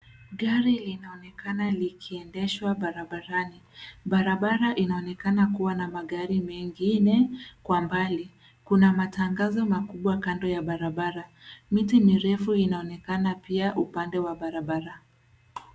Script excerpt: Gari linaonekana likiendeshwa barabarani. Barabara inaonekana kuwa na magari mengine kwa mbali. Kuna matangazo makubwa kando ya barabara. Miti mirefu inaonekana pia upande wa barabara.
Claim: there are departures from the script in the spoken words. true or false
false